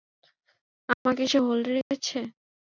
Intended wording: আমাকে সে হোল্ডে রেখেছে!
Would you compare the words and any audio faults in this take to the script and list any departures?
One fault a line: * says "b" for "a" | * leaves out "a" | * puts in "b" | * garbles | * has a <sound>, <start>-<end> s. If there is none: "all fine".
* has a dropout, 0.9-1.1 s
* has a dropout, 1.8-1.9 s